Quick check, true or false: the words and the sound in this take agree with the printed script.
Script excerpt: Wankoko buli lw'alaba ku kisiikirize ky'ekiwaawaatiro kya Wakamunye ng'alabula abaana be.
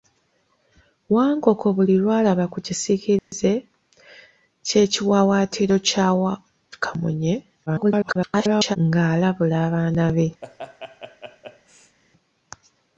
false